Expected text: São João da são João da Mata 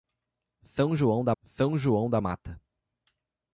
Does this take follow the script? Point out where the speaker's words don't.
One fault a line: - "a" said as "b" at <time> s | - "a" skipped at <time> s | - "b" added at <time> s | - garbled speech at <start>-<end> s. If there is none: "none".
none